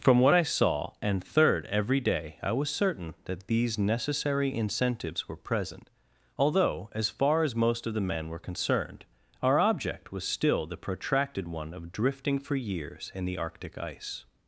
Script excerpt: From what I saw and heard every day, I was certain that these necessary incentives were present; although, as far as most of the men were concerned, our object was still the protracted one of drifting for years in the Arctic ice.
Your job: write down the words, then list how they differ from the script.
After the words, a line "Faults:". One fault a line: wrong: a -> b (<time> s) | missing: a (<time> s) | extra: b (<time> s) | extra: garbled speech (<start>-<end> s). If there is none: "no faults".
From what I saw and third every day, I was certain that these necessary incentives were present; although, as far as most of the men were concerned, our object was still the protracted one of drifting for years in the Arctic ice.
Faults:
wrong: heard -> third (1.2 s)